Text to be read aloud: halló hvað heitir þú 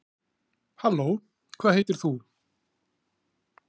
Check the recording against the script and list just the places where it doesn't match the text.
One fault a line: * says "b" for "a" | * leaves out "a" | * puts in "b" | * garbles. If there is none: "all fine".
all fine